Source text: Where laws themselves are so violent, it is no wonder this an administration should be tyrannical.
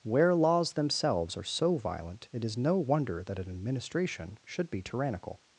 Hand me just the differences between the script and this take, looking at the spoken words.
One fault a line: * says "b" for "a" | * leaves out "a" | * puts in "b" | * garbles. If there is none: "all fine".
* says "that" for "this"